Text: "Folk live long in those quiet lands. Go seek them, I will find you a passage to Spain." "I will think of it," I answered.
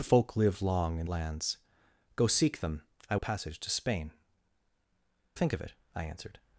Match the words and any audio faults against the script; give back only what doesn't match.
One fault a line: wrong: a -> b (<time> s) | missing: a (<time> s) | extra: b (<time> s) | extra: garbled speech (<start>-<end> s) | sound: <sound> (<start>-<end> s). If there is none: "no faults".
missing: those quiet (1.1 s)
missing: will find you (3.2 s)
missing: I will (4.1 s)